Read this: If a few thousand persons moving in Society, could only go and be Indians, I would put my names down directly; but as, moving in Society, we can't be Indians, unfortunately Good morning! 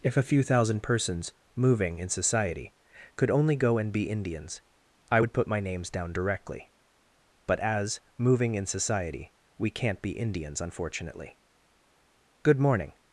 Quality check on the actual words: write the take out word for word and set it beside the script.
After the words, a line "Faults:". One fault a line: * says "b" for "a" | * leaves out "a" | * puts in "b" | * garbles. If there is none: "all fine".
If a few thousand persons moving in Society, could only go and be Indians, I would put my names down directly; but as, moving in Society, we can't be Indians, unfortunately Good morning!
Faults:
all fine